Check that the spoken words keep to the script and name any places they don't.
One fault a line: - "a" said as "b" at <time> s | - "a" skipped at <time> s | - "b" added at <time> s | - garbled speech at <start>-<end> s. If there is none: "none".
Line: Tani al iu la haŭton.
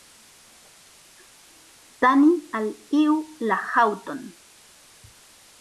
none